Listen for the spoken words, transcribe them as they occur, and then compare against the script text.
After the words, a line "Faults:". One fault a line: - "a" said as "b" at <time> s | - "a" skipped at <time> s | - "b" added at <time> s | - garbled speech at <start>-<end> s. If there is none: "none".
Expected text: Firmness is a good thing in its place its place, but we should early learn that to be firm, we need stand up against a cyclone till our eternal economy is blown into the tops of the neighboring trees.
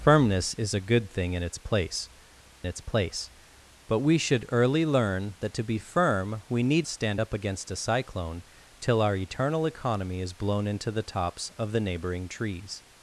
Firmness is a good thing in its place its place, but we should early learn that to be firm, we need stand up against a cyclone till our eternal economy is blown into the tops of the neighboring trees.
Faults:
none